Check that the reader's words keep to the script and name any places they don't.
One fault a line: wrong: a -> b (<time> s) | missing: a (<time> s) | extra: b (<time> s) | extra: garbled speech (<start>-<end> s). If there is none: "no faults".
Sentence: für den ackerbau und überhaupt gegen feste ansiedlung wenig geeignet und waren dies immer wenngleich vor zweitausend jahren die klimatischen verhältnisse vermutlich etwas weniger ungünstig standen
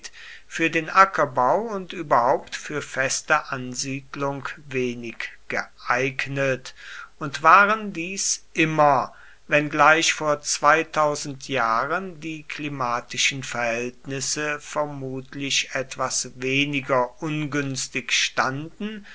wrong: gegen -> für (2.5 s)